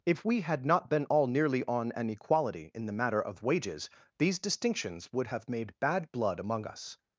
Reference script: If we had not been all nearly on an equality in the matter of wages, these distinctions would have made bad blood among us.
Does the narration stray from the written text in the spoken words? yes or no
no